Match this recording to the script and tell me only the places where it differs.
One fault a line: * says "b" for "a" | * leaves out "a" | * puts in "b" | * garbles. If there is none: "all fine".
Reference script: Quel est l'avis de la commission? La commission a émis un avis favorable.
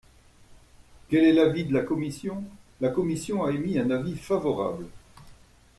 all fine